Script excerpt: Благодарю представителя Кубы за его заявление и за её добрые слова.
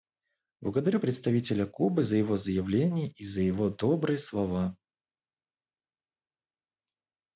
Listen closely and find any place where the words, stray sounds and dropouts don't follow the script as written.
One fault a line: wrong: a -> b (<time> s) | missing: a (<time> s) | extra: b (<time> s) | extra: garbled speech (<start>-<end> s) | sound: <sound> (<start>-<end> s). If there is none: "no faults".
wrong: её -> его (3.4 s)